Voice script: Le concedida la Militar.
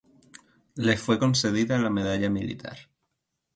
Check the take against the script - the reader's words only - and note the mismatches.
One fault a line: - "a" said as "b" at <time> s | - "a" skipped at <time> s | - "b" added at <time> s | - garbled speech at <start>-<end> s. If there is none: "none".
- "fue" added at 1.0 s
- "Medalla" added at 1.9 s